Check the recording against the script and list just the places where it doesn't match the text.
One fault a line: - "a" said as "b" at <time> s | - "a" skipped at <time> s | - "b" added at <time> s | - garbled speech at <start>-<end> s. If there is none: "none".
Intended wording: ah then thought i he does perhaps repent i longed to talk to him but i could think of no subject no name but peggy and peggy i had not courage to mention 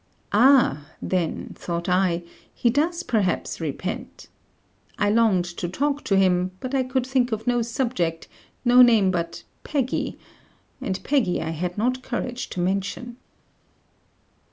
none